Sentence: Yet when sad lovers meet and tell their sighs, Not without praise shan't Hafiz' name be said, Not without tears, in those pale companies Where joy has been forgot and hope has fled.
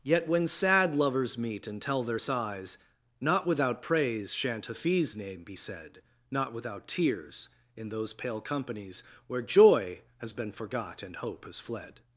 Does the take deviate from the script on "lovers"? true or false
false